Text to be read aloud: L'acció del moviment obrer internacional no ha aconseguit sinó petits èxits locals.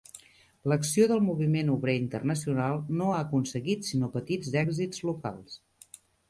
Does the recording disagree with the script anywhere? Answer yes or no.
no